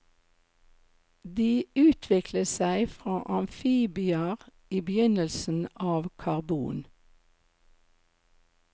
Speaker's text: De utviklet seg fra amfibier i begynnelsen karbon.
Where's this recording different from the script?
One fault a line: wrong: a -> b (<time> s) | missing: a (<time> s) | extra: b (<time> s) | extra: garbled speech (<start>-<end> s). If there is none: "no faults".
extra: av (5.9 s)